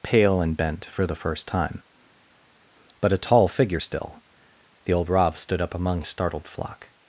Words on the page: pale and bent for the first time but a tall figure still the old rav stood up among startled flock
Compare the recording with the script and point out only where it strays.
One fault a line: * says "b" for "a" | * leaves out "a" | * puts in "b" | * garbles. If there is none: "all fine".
all fine